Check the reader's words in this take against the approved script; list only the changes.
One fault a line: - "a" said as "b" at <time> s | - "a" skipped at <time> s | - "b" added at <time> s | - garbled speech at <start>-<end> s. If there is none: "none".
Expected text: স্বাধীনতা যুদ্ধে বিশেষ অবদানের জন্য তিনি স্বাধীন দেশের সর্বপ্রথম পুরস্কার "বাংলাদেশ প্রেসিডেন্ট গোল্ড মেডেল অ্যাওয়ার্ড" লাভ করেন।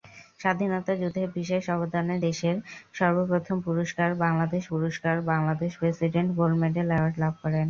- "জন্য তিনি স্বাধীন দেশের সর্বপ্রথম" said as "দেশের সর্বপ্রথম পুরস্কার বাংলাদেশ" at 2.2 s